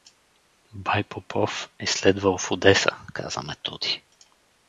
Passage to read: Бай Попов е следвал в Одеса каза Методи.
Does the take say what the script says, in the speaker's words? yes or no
yes